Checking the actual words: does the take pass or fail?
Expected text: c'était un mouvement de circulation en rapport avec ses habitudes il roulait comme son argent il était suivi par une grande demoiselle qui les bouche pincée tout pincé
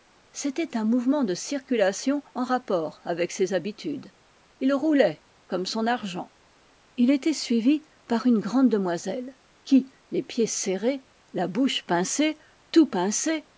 fail